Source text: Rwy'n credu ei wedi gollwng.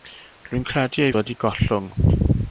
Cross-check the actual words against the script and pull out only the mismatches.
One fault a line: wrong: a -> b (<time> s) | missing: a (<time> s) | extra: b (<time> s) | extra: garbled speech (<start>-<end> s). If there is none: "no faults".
no faults